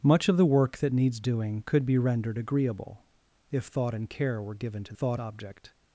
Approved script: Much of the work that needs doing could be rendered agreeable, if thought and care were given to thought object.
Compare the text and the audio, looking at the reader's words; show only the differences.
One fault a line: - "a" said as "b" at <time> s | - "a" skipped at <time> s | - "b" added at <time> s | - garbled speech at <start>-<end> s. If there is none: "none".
none